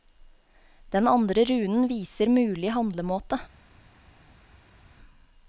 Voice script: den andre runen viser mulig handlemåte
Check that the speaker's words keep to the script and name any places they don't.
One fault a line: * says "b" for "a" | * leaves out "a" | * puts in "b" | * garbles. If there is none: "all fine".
all fine